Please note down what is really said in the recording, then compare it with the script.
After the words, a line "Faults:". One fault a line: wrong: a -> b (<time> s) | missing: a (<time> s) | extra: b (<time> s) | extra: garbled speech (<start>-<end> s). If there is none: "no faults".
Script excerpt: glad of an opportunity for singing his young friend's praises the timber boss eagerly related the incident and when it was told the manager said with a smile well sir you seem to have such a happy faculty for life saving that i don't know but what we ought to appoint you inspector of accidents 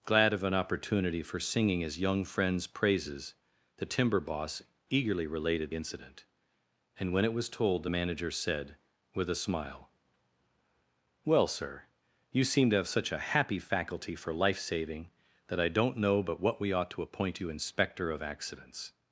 glad of an opportunity for singing his young friend's praises the timber boss eagerly related incident and when it was told the manager said with a smile well sir you seem to have such a happy faculty for life saving that i don't know but what we ought to appoint you inspector of accidents
Faults:
missing: the (5.7 s)